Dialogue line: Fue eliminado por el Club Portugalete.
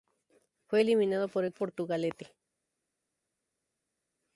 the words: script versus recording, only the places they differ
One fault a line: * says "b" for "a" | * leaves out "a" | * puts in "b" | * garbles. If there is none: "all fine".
* leaves out "Club"